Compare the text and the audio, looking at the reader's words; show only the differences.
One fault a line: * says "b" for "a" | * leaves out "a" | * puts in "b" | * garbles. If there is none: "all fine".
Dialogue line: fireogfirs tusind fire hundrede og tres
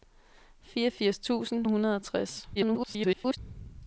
* leaves out "fire"
* garbles